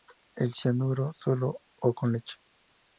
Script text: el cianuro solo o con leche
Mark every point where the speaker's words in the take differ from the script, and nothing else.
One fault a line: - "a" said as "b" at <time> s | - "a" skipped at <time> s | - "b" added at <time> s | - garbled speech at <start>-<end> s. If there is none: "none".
none